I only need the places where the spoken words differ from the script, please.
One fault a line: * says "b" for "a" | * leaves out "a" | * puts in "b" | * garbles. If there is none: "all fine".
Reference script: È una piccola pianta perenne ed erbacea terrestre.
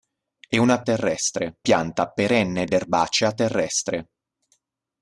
* says "terrestre" for "piccola"
* puts in "ed"